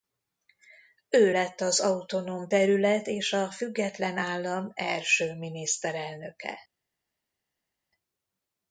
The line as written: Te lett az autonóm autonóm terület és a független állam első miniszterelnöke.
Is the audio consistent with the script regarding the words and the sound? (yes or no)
no